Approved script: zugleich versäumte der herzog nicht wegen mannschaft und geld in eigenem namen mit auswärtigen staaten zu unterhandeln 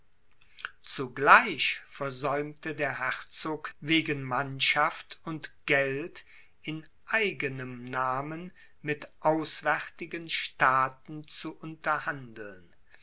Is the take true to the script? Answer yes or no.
no